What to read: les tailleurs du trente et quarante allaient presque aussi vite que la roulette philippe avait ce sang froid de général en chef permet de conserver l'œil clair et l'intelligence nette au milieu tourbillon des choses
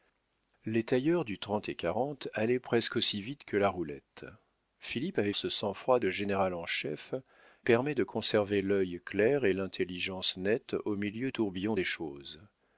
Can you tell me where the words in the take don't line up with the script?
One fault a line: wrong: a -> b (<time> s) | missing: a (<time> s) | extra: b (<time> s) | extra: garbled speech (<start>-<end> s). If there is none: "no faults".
no faults